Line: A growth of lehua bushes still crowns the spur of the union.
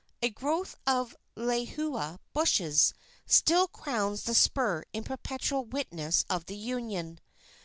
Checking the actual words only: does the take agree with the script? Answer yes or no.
no